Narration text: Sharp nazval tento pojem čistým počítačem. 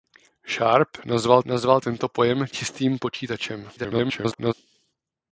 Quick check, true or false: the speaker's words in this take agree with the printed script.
false